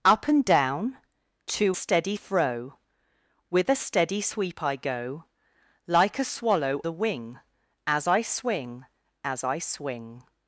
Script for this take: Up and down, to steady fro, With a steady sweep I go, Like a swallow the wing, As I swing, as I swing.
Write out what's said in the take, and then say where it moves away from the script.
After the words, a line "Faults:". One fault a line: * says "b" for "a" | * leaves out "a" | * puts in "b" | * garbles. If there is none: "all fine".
Up and down, to steady fro, With a steady sweep I go, Like a swallow the wing, As I swing, as I swing.
Faults:
all fine